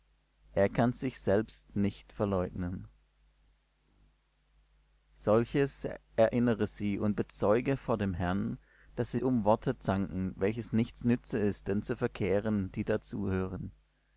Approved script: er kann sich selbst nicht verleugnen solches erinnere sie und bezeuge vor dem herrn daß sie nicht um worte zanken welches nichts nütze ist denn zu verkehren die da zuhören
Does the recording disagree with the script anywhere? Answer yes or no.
yes